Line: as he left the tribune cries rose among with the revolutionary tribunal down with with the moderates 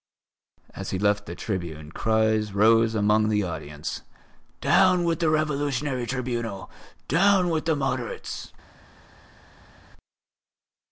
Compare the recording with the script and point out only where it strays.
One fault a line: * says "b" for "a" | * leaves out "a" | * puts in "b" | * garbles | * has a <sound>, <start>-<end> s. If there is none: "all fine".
* puts in "the audience down"
* leaves out "with"